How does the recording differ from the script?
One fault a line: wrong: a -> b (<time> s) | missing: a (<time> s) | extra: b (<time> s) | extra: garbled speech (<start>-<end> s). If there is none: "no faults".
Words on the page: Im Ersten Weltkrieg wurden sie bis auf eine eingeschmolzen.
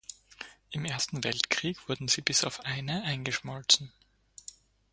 no faults